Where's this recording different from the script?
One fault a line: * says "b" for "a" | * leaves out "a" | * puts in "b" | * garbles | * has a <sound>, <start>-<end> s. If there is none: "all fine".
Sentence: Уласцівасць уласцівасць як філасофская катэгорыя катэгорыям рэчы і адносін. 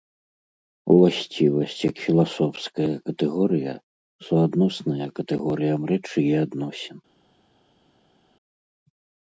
* leaves out "уласцівасць"
* puts in "суадносная"